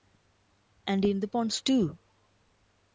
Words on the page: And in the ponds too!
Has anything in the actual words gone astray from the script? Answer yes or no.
no